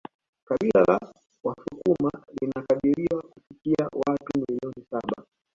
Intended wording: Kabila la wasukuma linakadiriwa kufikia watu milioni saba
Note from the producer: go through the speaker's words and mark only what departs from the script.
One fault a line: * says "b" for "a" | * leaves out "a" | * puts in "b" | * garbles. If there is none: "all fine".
all fine